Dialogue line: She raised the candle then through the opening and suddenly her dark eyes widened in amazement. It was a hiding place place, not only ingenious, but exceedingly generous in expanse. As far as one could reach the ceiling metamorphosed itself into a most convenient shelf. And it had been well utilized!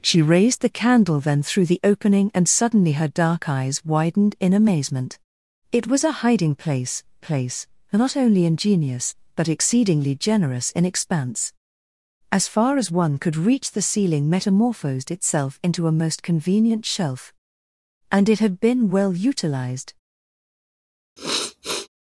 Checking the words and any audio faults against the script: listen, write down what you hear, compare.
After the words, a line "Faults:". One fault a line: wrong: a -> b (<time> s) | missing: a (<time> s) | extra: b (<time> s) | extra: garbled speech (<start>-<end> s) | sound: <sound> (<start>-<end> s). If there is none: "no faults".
She raised the candle then through the opening and suddenly her dark eyes widened in amazement. It was a hiding place place, not only ingenious, but exceedingly generous in expanse. As far as one could reach the ceiling metamorphosed itself into a most convenient shelf. And it had been well utilized!
Faults:
sound: sniff (21.2-21.9 s)